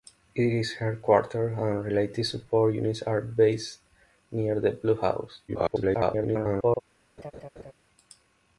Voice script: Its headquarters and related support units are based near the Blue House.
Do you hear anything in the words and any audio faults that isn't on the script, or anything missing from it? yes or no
yes